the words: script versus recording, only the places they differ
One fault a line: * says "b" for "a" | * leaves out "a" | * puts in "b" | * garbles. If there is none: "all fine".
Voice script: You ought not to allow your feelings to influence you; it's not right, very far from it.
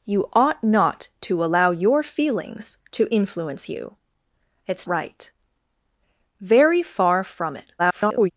* leaves out "not"
* garbles